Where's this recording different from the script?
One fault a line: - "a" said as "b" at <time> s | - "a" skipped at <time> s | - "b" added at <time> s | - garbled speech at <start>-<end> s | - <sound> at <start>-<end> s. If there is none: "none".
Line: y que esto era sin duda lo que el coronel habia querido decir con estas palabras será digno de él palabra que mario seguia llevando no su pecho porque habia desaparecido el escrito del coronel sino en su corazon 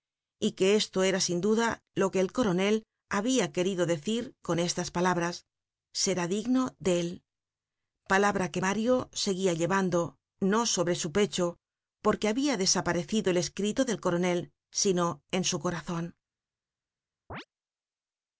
- "sobre" added at 10.7 s
- chirp at 17.3-17.5 s